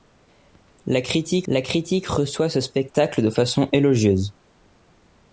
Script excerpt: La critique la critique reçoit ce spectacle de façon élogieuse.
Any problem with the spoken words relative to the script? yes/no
no